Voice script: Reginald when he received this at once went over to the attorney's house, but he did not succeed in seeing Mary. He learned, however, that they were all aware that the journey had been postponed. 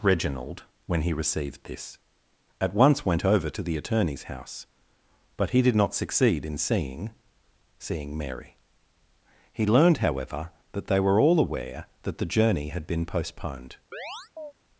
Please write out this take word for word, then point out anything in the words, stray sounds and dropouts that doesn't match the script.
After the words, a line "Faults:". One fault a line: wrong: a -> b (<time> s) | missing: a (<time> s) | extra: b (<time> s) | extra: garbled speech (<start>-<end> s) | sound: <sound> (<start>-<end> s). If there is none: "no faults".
Reginald when he received this at once went over to the attorney's house, but he did not succeed in seeing seeing Mary. He learned, however, that they were all aware that the journey had been postponed.
Faults:
extra: seeing (7.8 s)
sound: chirp (13.9-14.5 s)